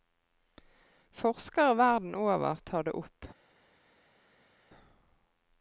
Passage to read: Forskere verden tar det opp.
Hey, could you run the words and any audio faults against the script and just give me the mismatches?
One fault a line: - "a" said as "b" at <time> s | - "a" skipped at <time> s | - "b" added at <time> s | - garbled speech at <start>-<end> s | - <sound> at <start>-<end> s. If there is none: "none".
- "over" added at 2.1 s